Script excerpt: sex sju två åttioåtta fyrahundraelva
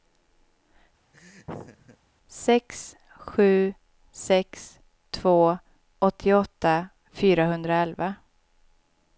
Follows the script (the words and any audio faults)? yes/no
no